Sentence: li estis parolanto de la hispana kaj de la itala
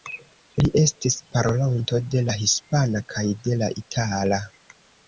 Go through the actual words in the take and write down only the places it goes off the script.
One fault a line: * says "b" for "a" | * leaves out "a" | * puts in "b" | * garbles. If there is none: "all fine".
all fine